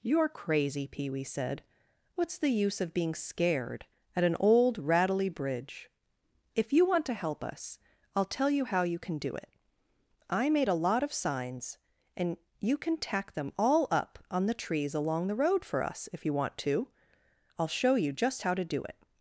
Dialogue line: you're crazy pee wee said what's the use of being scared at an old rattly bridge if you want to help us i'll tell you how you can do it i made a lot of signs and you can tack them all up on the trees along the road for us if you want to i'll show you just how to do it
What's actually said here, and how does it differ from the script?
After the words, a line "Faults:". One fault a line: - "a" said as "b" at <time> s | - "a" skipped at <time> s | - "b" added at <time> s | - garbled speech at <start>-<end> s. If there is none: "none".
you're crazy pee wee said what's the use of being scared at an old rattly bridge if you want to help us i'll tell you how you can do it i made a lot of signs and you can tack them all up on the trees along the road for us if you want to i'll show you just how to do it
Faults:
none